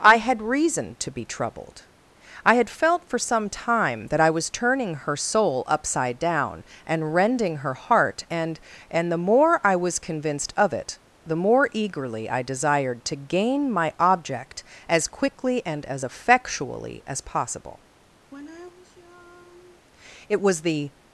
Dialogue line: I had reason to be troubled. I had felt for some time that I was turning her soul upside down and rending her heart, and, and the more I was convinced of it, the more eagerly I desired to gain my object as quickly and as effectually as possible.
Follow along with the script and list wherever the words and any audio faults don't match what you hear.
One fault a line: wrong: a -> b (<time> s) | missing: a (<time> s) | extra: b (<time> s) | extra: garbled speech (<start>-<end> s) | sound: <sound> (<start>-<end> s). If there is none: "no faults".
sound: sigh (18.3-19.9 s)
extra: It was the (20.3 s)